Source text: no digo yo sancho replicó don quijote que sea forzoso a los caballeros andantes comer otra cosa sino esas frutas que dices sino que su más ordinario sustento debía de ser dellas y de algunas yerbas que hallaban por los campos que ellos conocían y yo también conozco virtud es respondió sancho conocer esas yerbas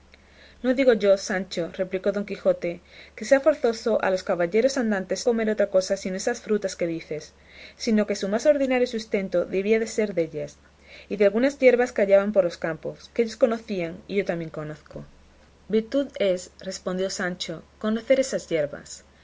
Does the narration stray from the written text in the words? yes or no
no